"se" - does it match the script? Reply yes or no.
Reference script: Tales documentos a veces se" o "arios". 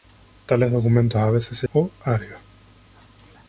yes